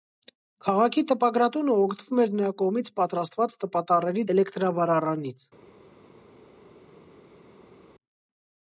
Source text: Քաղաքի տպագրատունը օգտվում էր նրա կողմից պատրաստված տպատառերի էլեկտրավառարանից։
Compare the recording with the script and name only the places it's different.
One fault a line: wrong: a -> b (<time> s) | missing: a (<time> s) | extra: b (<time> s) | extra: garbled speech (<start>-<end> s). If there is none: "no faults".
no faults